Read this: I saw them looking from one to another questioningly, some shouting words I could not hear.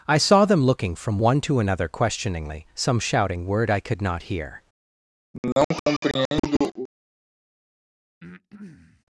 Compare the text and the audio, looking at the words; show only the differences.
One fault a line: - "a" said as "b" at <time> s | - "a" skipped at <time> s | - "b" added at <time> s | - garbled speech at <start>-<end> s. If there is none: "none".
- "words" said as "word" at 3.5 s